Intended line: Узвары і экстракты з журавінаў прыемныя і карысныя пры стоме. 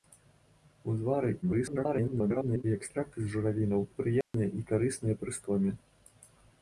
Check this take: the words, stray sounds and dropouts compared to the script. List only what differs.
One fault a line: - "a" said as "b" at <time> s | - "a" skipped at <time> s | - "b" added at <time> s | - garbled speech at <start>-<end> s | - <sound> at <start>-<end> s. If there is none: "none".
- garbled speech at 1.4-2.6 s
- dropout at 4.2-4.3 s